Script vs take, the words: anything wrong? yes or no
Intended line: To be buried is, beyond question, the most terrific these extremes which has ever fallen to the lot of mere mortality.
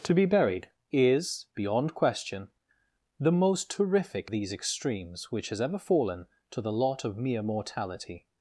no